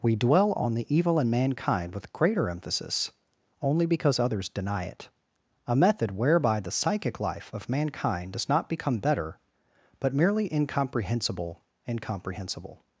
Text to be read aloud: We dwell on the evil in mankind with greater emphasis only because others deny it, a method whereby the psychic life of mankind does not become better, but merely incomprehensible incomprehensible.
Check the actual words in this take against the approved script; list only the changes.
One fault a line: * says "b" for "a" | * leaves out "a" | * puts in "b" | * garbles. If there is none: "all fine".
all fine